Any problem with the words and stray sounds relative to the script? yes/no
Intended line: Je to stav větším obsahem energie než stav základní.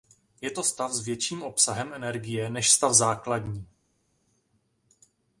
yes